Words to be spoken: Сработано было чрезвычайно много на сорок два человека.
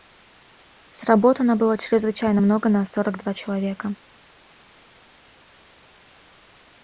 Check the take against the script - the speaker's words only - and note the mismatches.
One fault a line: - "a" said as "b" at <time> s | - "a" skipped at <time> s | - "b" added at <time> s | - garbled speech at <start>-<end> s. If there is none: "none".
none